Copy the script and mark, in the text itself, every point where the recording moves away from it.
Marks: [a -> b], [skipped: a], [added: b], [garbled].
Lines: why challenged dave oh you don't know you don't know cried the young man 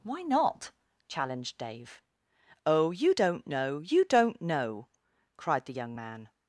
why [added: not] challenged dave oh you don't know you don't know cried the young man